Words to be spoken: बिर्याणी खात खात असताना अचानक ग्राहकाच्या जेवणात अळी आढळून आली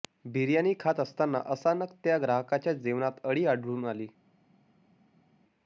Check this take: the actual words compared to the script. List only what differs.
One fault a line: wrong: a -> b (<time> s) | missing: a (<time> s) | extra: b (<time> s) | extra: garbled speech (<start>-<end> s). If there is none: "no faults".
missing: खात (1.0 s)
extra: त्या (2.0 s)